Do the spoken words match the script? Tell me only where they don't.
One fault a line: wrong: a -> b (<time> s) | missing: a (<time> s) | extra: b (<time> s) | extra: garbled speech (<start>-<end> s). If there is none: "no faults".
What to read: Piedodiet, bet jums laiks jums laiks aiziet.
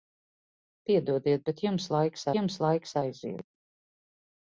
no faults